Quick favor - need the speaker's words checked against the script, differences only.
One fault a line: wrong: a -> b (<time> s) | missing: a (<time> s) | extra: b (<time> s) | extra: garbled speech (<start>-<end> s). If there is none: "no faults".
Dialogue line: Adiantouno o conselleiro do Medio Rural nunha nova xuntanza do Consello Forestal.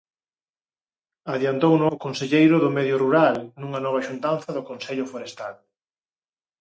no faults